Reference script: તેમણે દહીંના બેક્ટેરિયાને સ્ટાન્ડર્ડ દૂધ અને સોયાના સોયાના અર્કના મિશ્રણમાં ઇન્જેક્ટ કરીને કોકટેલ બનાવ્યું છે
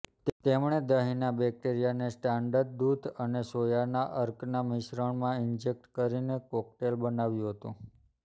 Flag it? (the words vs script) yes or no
yes